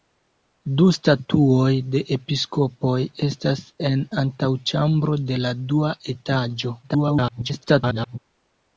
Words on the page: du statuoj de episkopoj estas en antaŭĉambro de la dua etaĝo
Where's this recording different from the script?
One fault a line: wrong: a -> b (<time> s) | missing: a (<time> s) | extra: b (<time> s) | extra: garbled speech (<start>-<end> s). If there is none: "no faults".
extra: garbled speech (6.8-8.2 s)